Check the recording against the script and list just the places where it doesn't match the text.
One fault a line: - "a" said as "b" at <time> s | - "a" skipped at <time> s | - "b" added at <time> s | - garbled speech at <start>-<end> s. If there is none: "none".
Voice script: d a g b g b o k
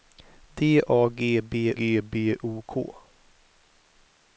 none